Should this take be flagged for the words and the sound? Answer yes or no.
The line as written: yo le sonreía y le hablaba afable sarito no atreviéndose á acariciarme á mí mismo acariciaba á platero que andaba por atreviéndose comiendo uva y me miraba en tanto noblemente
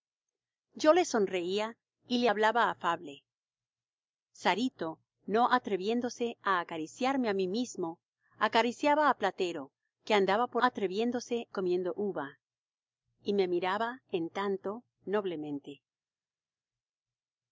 no